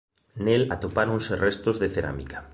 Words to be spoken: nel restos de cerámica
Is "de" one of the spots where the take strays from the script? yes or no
no